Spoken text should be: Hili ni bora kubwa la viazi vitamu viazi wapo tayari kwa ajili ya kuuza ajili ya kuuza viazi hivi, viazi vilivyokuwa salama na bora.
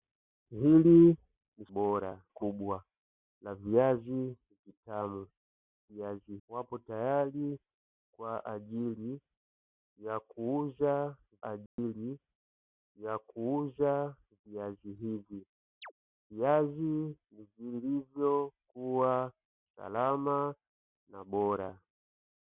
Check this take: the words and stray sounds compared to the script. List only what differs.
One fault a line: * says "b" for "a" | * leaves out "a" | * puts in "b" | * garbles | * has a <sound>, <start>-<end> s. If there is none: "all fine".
* has a dropout, 11.7-11.8 s
* has a chirp, 15.8-15.9 s